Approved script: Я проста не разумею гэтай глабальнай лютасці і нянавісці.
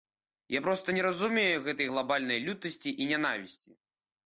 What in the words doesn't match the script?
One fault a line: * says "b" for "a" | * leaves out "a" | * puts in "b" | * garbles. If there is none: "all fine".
all fine